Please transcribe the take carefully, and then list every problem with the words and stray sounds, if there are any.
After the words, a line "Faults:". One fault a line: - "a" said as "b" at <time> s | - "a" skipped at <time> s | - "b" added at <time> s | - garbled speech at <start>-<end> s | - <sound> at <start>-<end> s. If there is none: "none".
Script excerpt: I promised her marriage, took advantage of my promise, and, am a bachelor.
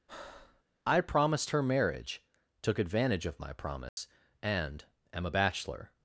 I promised her marriage, took advantage of my promise, and, am a bachelor.
Faults:
- breath at 0.1-0.6 s
- dropout at 3.9-4.0 s